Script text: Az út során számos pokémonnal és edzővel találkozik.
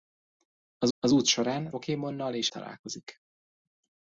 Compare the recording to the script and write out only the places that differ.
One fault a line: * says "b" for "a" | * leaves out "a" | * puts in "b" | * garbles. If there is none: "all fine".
* puts in "az"
* leaves out "számos"
* leaves out "edzővel"